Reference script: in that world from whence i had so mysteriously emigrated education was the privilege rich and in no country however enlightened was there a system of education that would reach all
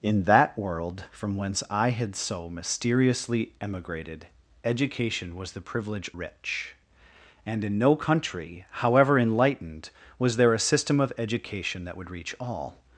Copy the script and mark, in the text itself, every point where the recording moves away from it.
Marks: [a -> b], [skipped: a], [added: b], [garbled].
in that world from whence i had so mysteriously emigrated education was the privilege rich and in no country however enlightened was there a system of education that would reach all